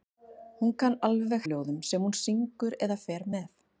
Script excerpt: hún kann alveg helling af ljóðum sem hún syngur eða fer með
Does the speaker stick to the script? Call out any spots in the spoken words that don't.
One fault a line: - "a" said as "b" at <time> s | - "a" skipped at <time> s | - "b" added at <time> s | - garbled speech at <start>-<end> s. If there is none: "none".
- "helling" skipped at 1.4 s